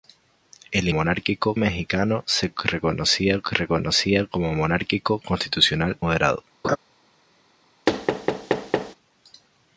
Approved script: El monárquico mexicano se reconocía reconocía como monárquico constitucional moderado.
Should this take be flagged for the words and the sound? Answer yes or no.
yes